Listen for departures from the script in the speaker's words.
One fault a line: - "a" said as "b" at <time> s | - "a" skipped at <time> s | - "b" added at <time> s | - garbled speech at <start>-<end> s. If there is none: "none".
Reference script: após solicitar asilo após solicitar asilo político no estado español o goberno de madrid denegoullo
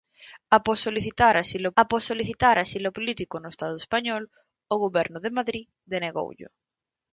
none